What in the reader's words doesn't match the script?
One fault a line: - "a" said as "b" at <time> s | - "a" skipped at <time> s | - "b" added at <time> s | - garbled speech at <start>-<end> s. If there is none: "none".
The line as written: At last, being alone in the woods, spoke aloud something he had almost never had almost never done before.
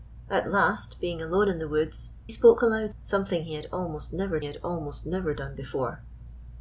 none